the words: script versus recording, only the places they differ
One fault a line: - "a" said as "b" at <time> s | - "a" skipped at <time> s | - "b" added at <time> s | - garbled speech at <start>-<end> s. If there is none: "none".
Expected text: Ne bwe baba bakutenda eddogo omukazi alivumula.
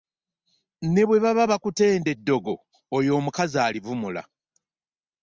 - "oyo" added at 3.0 s